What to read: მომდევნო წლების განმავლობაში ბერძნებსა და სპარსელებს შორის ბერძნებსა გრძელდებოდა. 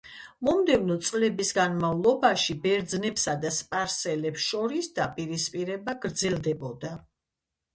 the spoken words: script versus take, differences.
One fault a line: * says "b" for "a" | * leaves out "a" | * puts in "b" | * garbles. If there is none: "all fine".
* says "დაპირისპირება" for "ბერძნებსა"